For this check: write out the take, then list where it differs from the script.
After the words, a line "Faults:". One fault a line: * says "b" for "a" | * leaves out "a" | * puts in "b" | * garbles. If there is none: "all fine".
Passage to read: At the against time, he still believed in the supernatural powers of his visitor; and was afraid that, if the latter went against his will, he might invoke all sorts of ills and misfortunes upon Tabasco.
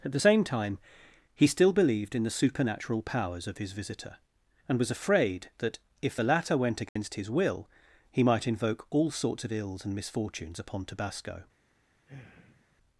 At the same time, he still believed in the supernatural powers of his visitor; and was afraid that, if the latter went against his will, he might invoke all sorts of ills and misfortunes upon Tabasco.
Faults:
* says "same" for "against"